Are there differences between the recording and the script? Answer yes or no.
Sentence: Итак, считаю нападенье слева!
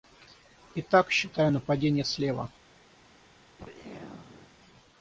no